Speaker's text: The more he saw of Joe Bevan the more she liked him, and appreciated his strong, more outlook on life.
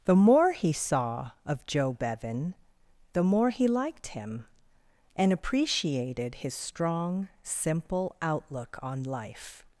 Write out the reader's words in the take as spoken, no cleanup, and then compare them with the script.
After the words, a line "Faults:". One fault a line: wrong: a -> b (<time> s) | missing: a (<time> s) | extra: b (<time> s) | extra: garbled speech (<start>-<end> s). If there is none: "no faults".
The more he saw of Joe Bevan the more he liked him, and appreciated his strong, simple outlook on life.
Faults:
wrong: she -> he (3.5 s)
wrong: more -> simple (7.4 s)